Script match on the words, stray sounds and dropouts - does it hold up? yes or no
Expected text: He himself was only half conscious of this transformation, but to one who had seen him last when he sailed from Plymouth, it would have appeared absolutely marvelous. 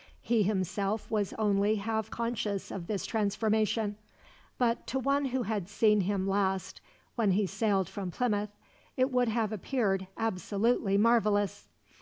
yes